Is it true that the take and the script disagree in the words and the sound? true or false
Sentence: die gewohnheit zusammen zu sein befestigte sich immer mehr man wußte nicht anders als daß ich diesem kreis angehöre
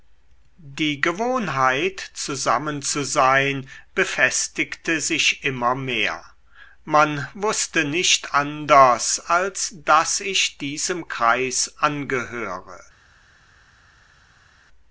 false